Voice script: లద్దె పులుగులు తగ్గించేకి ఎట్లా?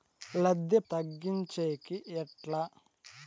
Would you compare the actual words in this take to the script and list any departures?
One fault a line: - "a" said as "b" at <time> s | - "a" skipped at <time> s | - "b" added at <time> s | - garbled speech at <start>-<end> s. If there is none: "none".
- "పులుగులు" skipped at 0.8 s